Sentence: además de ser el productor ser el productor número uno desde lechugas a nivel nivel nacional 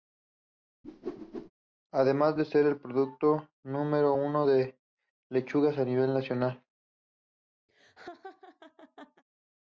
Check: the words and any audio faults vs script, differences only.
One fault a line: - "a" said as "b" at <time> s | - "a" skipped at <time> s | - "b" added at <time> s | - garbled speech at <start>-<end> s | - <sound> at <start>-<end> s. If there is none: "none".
- whoosh at 0.8-1.5 s
- "ser el productor" skipped at 3.5 s
- "desde" said as "de" at 4.4 s
- "nivel" skipped at 6.1 s
- laugh at 7.7-9.2 s